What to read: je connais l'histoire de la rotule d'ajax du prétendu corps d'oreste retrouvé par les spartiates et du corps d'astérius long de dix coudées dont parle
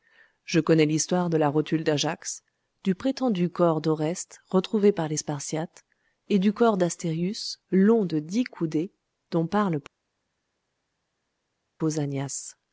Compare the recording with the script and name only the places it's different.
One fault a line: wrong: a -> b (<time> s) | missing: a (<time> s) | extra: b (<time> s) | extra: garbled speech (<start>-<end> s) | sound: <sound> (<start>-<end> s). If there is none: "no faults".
no faults